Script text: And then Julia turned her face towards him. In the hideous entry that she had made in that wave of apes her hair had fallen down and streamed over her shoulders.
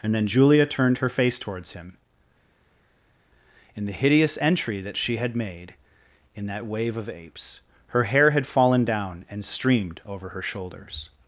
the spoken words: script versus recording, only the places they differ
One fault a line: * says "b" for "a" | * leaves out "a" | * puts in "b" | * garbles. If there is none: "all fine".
all fine